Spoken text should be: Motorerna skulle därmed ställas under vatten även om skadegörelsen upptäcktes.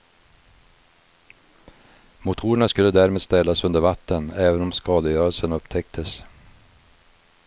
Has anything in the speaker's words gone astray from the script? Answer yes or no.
no